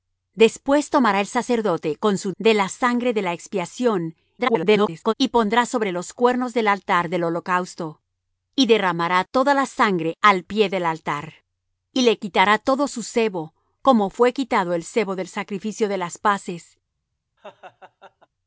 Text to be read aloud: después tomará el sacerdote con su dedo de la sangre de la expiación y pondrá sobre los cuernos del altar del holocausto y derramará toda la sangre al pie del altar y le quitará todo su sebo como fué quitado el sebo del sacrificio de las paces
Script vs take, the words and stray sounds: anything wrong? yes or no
yes